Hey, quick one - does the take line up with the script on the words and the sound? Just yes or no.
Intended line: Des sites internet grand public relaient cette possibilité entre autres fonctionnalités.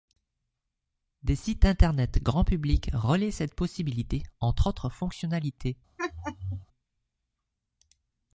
no